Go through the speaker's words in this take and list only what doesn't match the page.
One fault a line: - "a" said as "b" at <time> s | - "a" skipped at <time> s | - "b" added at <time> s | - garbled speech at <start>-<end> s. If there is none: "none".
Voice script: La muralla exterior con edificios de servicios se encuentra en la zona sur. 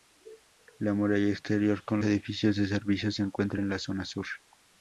none